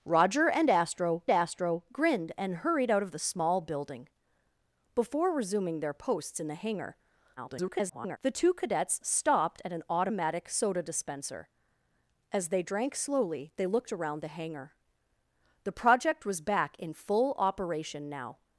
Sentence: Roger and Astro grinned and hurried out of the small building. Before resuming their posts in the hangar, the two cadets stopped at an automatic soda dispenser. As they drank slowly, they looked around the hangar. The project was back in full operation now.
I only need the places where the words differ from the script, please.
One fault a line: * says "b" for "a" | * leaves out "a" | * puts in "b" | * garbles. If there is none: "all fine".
* puts in "Astro"
* garbles